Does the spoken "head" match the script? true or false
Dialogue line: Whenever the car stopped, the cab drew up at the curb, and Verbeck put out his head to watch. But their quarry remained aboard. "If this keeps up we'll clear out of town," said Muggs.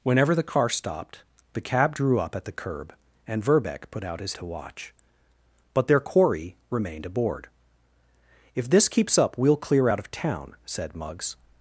false